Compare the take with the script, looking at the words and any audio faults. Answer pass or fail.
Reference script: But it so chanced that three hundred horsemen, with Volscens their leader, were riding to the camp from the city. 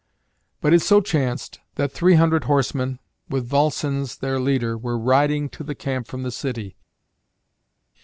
pass